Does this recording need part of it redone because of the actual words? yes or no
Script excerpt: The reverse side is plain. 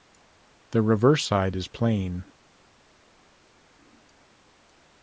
no